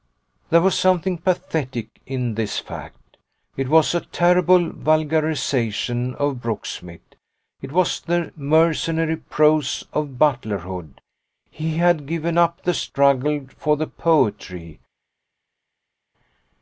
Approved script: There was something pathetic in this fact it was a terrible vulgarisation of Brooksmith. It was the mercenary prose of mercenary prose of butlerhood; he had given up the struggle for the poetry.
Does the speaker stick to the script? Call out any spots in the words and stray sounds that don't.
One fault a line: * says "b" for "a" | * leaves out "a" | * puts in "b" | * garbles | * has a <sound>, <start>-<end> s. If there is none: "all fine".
* leaves out "mercenary prose of"